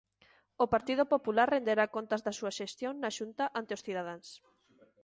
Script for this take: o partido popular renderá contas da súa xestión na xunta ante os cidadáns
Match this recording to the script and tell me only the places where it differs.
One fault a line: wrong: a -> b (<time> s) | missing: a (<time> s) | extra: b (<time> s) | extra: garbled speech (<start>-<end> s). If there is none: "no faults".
no faults